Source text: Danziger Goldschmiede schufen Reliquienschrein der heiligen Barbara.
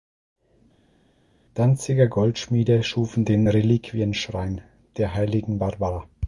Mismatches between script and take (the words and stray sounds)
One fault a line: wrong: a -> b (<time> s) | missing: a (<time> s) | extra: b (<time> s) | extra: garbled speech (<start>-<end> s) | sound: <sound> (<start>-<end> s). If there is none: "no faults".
extra: den (3.2 s)